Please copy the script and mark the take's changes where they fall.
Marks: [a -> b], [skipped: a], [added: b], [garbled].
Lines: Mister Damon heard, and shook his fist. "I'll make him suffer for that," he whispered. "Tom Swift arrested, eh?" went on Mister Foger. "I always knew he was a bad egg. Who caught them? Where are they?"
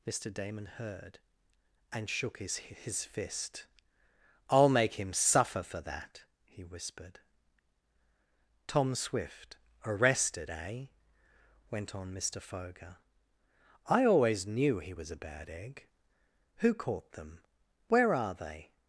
Mister Damon heard, and shook his [added: his] fist. "I'll make him suffer for that," he whispered. "Tom Swift arrested, eh?" went on Mister Foger. "I always knew he was a bad egg. Who caught them? Where are they?"